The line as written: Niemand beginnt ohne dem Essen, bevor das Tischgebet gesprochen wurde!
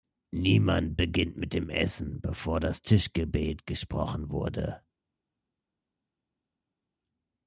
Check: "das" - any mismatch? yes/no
no